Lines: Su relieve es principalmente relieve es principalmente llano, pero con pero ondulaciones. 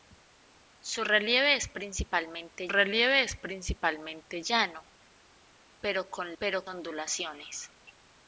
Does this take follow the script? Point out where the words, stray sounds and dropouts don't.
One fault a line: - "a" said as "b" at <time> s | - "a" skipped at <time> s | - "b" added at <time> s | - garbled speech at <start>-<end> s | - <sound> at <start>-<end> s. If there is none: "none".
none